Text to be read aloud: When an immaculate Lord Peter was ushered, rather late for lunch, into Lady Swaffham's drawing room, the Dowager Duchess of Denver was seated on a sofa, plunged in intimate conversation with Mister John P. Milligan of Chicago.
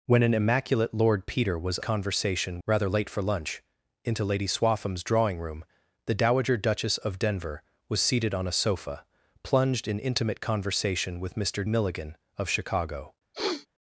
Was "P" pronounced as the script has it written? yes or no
no